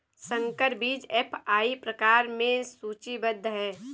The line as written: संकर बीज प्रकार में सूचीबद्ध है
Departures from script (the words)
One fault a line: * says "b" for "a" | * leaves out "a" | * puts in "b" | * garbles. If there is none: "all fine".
* puts in "एफ.आई"